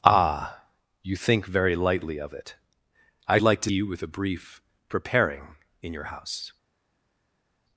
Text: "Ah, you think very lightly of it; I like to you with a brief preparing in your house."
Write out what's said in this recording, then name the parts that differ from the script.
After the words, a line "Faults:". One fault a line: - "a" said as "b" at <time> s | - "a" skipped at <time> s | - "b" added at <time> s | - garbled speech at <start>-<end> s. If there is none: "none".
"Ah, you think very lightly of it; I like to you with a brief preparing in your house."
Faults:
none